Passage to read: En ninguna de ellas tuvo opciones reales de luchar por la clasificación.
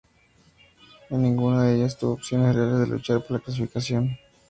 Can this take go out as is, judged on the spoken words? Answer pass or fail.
pass